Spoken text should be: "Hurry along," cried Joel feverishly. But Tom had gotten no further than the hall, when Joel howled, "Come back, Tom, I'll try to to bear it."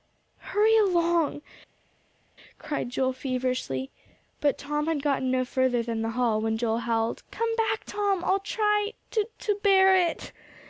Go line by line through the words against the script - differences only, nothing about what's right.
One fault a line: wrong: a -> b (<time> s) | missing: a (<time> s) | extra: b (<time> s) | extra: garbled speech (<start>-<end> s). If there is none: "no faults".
no faults